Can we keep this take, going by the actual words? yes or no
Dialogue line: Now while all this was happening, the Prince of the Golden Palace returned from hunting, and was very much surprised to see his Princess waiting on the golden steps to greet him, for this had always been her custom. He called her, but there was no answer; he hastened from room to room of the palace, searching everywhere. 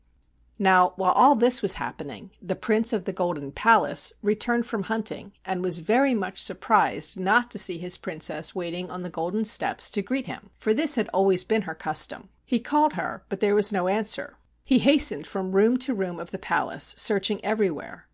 no